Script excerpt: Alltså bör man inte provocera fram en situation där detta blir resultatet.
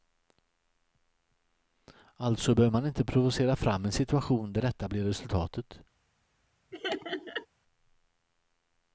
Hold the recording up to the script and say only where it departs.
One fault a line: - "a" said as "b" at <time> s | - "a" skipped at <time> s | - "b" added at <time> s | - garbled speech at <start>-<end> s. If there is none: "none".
none